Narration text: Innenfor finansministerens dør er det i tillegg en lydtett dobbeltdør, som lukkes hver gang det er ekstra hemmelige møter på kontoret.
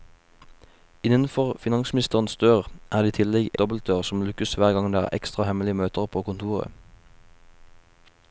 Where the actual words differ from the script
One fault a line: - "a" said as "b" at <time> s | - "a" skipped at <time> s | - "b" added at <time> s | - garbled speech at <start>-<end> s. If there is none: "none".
- "en lydtett" skipped at 3.5 s